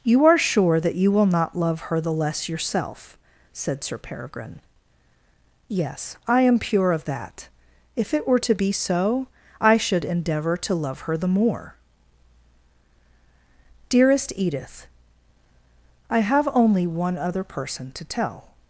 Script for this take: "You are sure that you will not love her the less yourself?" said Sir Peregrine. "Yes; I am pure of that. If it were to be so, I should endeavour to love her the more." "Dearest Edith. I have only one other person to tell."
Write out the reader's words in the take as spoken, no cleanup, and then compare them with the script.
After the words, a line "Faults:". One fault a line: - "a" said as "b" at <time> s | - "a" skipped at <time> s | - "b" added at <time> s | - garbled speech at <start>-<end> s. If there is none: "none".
"You are sure that you will not love her the less yourself?" said Sir Peregrine. "Yes; I am pure of that. If it were to be so, I should endeavour to love her the more." "Dearest Edith. I have only one other person to tell."
Faults:
none